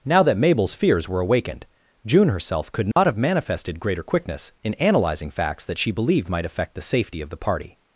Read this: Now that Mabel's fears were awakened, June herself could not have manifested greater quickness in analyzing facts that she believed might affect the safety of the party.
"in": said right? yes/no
yes